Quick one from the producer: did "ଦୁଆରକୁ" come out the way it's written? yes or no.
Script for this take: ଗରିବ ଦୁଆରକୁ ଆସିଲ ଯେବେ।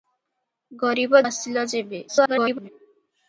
no